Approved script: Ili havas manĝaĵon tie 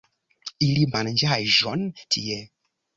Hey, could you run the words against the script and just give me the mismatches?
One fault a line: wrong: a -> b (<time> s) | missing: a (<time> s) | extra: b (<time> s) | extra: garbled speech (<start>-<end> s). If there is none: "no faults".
missing: havas (0.9 s)